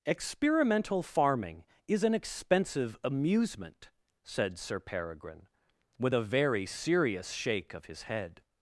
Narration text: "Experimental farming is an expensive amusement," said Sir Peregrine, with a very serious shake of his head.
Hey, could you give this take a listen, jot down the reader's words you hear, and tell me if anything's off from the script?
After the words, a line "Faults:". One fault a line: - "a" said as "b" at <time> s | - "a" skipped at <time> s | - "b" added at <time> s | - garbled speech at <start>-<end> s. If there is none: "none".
"Experimental farming is an expensive amusement," said Sir Peregrine, with a very serious shake of his head.
Faults:
none